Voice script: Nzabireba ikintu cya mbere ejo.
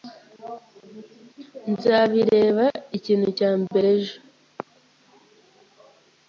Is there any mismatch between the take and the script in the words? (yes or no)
no